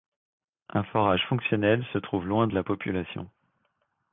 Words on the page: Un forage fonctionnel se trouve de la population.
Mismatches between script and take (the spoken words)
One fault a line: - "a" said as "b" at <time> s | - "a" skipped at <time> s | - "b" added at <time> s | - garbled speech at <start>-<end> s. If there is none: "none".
- "loin" added at 2.2 s